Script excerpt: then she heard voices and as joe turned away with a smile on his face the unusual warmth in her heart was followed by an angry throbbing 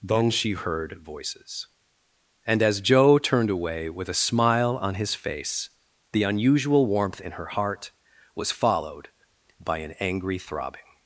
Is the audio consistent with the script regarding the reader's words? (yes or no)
yes